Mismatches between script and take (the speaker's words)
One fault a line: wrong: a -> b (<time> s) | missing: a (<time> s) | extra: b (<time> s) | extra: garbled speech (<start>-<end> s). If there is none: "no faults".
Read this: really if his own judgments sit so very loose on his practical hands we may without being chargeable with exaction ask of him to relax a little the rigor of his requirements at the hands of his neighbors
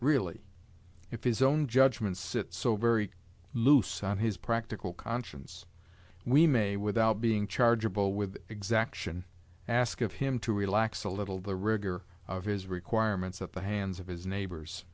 wrong: hands -> conscience (4.9 s)